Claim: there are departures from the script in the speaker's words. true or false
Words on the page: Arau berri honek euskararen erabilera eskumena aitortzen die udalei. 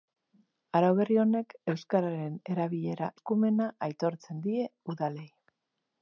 false